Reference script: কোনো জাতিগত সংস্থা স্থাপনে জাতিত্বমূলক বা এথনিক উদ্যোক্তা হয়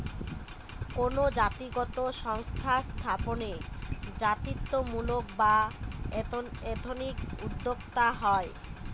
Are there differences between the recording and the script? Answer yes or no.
no